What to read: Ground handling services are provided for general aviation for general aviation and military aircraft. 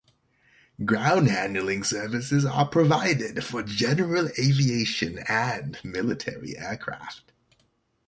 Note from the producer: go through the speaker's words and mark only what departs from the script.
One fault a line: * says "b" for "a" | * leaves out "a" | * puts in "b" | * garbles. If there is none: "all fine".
* leaves out "for general aviation"